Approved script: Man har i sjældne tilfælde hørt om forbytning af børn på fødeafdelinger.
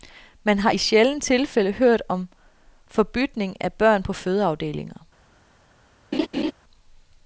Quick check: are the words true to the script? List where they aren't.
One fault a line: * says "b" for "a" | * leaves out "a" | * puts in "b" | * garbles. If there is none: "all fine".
all fine